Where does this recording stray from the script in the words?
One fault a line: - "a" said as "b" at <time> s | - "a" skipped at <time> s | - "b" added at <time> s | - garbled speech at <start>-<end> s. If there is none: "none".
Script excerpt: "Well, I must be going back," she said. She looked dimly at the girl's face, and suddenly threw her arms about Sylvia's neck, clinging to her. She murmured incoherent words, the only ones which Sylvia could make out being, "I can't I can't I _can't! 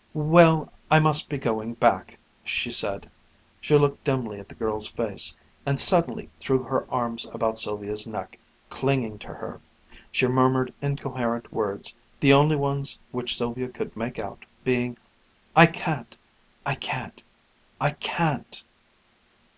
none